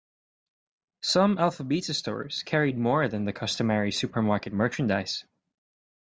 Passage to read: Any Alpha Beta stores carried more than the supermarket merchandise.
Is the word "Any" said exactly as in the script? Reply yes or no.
no